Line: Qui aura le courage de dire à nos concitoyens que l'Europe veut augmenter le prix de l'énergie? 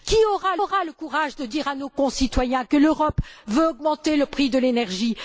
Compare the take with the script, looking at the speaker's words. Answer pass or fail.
fail